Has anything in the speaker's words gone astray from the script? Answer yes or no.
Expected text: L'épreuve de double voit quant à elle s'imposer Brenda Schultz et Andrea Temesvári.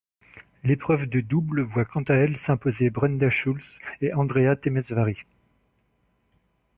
no